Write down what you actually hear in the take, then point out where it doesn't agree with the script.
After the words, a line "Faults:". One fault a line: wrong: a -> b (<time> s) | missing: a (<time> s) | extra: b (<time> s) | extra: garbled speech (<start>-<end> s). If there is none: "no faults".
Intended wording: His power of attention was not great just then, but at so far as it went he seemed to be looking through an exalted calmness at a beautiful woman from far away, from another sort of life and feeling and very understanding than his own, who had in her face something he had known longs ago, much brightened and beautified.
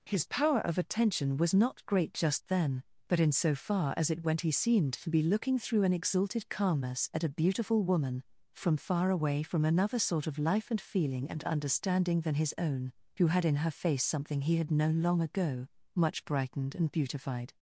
His power of attention was not great just then, but in so far as it went he seemed to be looking through an exalted calmness at a beautiful woman from far away, from another sort of life and feeling and understanding than his own, who had in her face something he had known long ago, much brightened and beautified.
Faults:
wrong: at -> in (3.2 s)
missing: very (11.4 s)
wrong: longs -> long (15.0 s)